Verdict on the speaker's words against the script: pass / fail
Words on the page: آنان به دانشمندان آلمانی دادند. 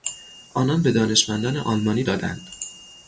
pass